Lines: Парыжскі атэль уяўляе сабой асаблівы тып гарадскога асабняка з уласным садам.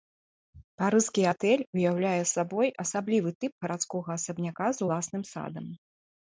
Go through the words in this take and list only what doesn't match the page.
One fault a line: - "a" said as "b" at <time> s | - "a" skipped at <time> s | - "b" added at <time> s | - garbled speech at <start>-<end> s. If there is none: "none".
none